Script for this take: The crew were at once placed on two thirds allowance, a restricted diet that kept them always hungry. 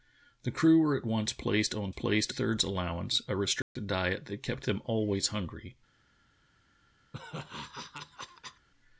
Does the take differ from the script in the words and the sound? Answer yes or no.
yes